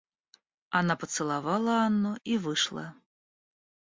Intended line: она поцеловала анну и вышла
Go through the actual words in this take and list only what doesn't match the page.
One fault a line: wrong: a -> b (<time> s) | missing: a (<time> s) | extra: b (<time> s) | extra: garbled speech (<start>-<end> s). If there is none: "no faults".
no faults